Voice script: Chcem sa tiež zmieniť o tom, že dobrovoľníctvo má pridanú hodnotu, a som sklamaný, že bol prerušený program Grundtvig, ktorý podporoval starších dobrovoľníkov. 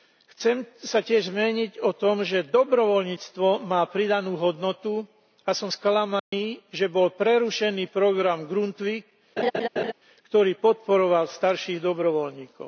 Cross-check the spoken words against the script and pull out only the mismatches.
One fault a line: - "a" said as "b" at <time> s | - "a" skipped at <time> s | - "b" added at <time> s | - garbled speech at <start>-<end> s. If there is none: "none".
none